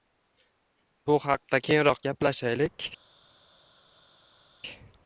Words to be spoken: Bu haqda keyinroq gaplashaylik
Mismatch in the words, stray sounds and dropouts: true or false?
false